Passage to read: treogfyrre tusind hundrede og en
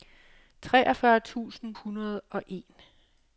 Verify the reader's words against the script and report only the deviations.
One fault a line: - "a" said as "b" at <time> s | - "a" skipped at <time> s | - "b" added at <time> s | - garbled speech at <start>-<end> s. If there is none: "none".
none